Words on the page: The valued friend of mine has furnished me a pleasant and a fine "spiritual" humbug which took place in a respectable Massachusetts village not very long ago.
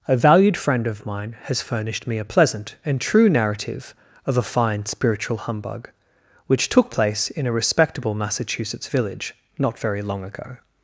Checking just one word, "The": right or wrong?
wrong